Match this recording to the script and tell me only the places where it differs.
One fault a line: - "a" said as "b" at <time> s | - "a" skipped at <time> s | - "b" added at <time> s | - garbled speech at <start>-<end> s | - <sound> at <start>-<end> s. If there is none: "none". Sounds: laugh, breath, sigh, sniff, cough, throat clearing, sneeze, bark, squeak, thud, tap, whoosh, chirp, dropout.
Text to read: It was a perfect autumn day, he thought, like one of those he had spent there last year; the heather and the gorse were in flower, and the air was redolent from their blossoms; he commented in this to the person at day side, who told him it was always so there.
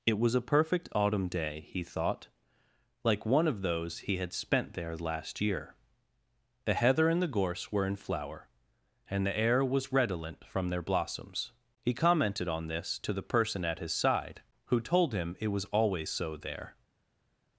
- "in" said as "on" at 12.5 s
- "day" said as "his" at 13.8 s